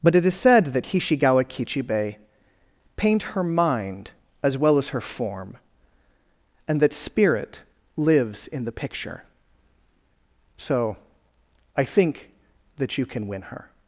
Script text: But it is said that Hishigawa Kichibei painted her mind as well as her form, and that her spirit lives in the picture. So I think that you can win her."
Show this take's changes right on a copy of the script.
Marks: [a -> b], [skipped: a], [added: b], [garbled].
But it is said that Hishigawa Kichibei [painted -> paint] her mind as well as her form, and that [skipped: her] spirit lives in the picture. So I think that you can win her."